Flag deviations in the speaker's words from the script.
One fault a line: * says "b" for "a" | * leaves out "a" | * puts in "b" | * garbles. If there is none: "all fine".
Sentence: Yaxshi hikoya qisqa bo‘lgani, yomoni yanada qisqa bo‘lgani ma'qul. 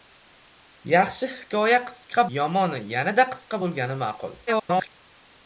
* leaves out "bo‘lgani"
* garbles